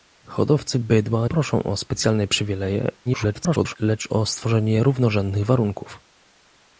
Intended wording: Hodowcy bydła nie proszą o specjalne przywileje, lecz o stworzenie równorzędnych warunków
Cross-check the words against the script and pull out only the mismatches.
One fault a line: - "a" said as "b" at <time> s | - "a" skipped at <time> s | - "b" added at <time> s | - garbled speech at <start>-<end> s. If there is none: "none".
- "nie" skipped at 1.3 s
- garbled speech at 3.1-3.8 s